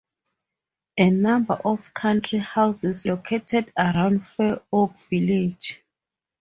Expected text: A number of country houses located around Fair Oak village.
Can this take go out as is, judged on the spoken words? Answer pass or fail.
pass